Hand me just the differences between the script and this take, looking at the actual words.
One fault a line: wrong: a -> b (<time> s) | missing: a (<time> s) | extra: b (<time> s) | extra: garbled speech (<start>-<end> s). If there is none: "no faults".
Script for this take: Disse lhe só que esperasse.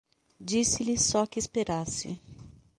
no faults